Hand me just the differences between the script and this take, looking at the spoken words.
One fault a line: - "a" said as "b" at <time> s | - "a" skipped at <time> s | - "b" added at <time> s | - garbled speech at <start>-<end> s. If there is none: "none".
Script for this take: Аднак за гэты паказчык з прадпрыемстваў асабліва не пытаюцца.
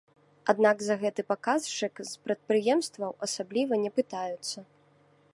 none